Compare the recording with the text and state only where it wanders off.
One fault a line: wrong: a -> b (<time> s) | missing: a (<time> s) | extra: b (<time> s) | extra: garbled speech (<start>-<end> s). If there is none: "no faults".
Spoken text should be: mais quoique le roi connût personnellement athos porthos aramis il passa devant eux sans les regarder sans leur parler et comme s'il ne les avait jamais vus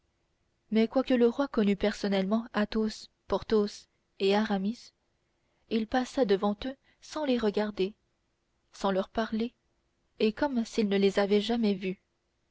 extra: et (4.2 s)